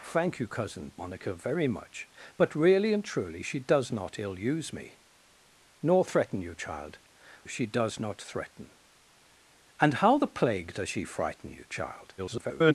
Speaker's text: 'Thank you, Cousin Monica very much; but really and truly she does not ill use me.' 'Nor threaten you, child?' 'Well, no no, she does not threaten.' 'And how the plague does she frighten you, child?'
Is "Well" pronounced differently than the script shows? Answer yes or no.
yes